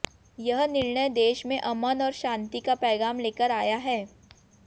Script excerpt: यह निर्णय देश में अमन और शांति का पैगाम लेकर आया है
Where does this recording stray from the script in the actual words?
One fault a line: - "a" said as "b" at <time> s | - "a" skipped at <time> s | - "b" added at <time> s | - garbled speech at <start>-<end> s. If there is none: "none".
none